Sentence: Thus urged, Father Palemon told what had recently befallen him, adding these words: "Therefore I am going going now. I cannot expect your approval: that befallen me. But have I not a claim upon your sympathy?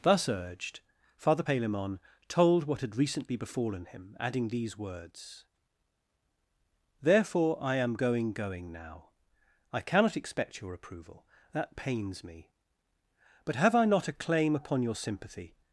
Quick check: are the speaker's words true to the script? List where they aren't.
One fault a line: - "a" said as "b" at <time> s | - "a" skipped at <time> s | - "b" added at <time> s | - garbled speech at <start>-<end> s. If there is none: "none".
- "befallen" said as "pains" at 11.7 s